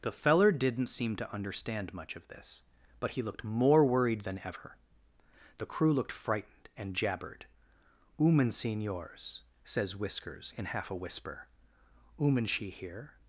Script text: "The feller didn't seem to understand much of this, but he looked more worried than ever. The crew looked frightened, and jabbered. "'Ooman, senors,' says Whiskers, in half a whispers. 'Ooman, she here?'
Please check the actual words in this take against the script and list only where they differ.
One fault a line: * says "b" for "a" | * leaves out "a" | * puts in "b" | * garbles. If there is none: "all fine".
* says "whisper" for "whispers"